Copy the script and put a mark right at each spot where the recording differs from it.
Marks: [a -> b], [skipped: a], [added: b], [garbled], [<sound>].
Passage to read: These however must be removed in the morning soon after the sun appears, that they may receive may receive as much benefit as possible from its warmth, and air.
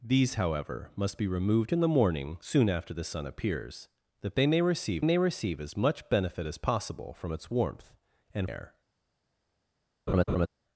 These however must be removed in the morning soon after the sun appears, that they may receive may receive as much benefit as possible from its warmth, and air. [laugh]